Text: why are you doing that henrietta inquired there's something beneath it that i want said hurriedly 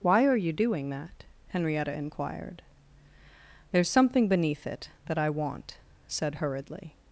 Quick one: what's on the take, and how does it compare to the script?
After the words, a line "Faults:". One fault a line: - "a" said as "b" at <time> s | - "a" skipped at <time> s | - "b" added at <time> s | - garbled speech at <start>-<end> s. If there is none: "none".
why are you doing that henrietta inquired there's something beneath it that i want said hurriedly
Faults:
none